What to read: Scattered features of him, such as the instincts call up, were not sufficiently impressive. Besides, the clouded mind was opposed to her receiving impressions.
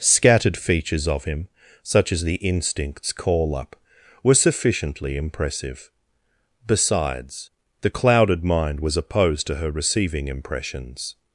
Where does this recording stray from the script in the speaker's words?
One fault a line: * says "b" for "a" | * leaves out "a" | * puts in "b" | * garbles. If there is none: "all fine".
* leaves out "not"